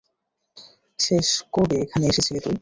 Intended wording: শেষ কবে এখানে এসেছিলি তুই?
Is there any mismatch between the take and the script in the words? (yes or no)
no